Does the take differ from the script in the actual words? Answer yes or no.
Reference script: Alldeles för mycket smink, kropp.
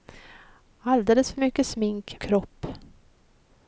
no